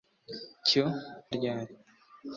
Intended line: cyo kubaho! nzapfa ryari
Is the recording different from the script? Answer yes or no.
yes